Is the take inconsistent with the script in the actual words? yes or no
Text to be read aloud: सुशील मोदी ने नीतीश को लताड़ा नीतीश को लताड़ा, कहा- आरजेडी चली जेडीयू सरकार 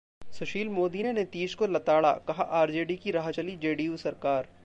yes